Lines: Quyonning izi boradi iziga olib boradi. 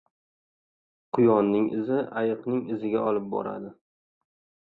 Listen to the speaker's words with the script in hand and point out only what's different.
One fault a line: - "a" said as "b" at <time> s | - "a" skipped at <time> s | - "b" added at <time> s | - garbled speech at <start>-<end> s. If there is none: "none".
- "boradi" said as "ayiqning" at 2.2 s